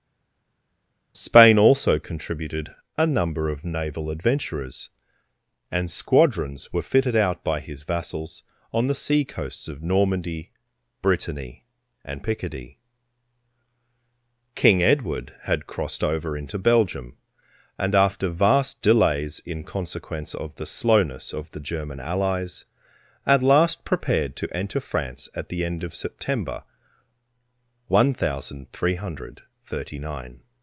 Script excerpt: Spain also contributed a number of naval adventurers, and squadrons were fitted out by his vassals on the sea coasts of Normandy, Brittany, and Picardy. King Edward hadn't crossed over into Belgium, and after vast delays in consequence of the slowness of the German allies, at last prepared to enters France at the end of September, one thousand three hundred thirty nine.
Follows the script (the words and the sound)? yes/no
no